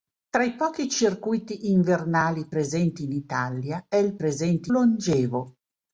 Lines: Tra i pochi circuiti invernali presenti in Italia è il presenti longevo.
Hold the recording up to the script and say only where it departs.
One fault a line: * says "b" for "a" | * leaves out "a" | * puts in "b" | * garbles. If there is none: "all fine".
all fine